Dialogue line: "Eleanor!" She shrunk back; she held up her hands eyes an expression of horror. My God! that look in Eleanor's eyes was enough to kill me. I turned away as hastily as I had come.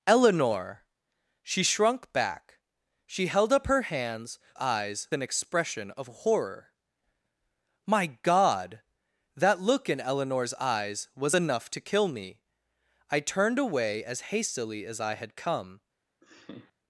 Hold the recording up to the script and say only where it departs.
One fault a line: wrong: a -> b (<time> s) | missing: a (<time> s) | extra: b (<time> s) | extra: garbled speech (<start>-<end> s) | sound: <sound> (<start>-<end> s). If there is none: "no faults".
sound: laugh (16.2-16.7 s)